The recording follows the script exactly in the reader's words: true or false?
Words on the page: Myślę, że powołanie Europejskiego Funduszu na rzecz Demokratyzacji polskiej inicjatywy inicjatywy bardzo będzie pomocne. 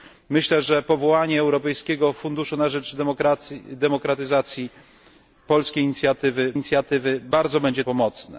true